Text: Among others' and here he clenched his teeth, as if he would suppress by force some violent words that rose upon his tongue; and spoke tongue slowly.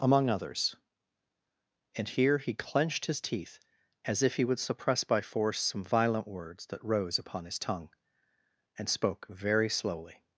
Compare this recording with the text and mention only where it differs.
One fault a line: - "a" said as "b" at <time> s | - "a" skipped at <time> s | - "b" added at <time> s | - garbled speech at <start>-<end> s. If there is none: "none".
- "tongue" said as "very" at 9.3 s